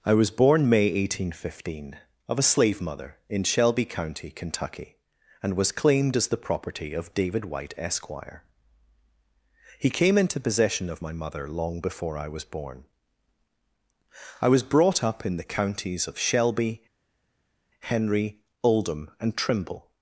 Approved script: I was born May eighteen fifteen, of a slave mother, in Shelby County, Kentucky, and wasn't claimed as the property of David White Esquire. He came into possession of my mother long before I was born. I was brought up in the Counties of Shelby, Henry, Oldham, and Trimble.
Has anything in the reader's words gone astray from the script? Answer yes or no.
yes